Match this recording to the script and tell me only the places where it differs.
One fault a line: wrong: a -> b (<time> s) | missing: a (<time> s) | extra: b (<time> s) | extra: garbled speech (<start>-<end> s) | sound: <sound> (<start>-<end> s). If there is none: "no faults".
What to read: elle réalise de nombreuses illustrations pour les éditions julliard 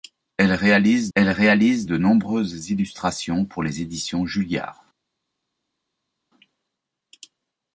extra: elle réalise (1.1 s)